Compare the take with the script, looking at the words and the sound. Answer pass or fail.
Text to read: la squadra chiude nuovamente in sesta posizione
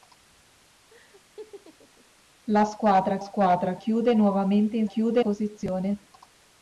fail